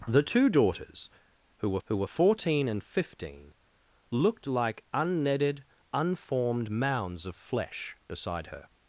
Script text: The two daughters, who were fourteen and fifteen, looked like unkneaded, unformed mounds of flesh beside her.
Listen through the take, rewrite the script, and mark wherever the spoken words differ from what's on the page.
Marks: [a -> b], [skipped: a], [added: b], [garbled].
The two daughters, who were [added: who were] fourteen and fifteen, looked like unkneaded, unformed mounds of flesh beside her.